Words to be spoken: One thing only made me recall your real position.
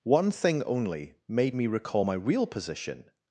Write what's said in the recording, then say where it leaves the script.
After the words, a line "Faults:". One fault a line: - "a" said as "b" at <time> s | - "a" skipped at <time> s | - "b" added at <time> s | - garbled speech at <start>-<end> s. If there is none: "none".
One thing only made me recall my real position.
Faults:
- "your" said as "my" at 2.0 s